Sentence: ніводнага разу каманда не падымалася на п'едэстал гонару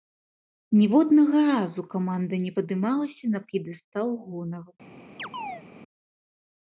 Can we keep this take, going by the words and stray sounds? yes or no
no